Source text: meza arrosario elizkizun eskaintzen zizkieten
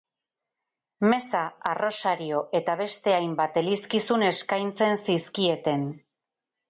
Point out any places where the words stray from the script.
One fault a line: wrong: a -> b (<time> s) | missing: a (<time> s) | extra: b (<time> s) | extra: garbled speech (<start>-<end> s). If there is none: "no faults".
extra: eta beste hainbat (2.6 s)